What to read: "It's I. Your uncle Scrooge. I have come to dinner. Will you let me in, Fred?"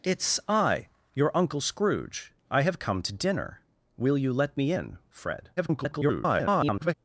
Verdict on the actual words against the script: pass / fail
fail